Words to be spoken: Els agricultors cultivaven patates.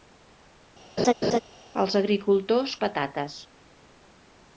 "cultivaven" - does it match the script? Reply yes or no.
no